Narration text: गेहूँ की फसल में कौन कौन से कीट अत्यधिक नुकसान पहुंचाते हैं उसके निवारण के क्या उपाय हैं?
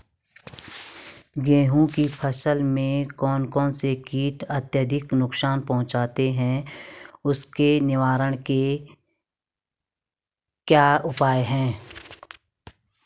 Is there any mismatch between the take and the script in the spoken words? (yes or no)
no